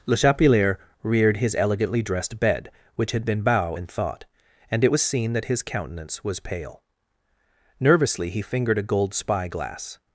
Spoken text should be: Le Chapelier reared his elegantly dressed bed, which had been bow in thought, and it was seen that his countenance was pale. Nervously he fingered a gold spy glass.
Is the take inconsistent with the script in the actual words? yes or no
no